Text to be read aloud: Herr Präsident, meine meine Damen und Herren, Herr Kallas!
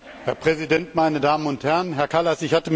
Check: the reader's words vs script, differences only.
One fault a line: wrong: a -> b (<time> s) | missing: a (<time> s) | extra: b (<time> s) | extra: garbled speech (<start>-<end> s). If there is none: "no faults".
missing: meine (1.2 s)